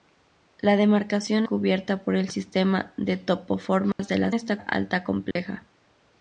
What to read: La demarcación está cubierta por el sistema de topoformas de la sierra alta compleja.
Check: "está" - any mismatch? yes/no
yes